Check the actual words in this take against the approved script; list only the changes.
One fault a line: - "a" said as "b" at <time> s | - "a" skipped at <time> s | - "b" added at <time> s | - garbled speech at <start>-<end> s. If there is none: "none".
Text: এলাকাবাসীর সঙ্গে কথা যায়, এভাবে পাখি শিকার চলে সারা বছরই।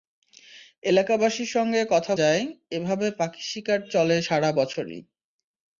none